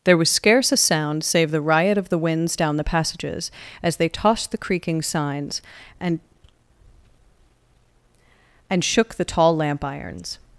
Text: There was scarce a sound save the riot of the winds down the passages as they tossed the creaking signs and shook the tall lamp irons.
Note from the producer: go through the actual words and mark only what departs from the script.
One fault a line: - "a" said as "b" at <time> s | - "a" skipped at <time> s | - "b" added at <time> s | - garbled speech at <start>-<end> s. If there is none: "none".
- "and" added at 8.7 s